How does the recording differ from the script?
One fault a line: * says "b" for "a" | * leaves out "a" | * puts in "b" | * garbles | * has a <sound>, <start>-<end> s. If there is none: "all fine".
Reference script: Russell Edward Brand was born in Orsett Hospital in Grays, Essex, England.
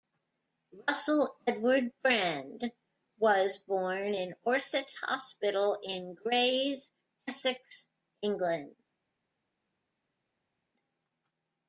all fine